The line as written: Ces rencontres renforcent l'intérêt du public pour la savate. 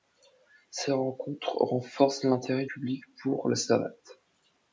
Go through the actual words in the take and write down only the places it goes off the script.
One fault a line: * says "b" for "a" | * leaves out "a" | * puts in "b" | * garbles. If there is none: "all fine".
* leaves out "du"